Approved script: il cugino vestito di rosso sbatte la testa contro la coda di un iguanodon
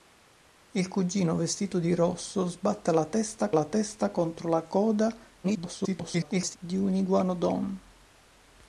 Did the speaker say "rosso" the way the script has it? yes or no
yes